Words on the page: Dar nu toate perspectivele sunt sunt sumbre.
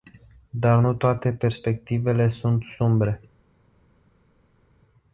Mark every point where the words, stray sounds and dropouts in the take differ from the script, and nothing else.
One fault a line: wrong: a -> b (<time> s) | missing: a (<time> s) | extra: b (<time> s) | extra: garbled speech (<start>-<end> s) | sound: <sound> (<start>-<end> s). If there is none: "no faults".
missing: sunt (2.6 s)